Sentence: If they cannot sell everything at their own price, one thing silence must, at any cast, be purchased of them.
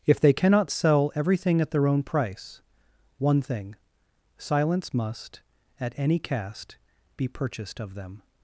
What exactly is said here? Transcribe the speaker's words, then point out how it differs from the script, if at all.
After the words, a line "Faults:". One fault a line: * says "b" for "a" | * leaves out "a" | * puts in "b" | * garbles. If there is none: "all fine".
If they cannot sell everything at their own price, one thing silence must, at any cast, be purchased of them.
Faults:
all fine